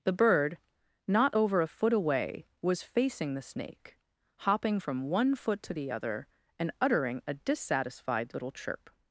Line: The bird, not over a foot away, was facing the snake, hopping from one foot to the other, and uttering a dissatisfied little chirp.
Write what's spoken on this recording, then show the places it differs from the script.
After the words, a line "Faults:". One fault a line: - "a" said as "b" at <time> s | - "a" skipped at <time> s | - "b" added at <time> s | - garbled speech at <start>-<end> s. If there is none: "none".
The bird, not over a foot away, was facing the snake, hopping from one foot to the other, and uttering a dissatisfied little chirp.
Faults:
none